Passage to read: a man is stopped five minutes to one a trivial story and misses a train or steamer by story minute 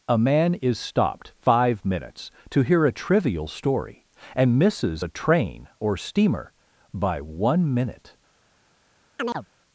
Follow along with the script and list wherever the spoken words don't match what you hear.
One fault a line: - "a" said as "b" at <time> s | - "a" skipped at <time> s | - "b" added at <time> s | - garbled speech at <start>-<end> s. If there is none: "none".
- "one" said as "hear" at 2.6 s
- "story" said as "one" at 7.2 s